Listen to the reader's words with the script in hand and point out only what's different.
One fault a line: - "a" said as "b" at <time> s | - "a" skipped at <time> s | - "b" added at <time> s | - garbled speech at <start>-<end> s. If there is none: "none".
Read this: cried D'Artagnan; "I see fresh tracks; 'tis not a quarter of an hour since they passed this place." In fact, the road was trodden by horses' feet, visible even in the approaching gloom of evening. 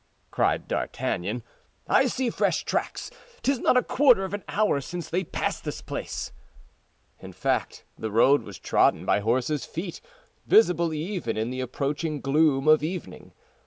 none